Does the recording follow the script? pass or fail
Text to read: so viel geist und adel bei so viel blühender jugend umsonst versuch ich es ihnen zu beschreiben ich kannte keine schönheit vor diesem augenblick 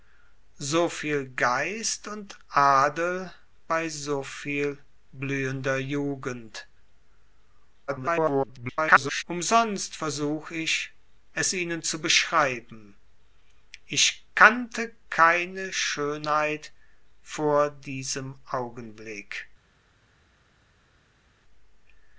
fail